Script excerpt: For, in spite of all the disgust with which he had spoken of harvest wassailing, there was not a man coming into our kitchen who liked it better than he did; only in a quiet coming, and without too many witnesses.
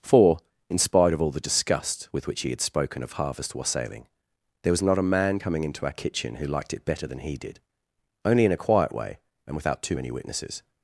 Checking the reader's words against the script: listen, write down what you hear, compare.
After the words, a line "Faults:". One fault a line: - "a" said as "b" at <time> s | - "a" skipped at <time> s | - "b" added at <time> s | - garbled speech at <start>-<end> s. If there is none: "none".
For, in spite of all the disgust with which he had spoken of harvest wassailing, there was not a man coming into our kitchen who liked it better than he did; only in a quiet way, and without too many witnesses.
Faults:
- "coming" said as "way" at 8.9 s